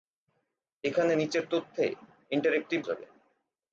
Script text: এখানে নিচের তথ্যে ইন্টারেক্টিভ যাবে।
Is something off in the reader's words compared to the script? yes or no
no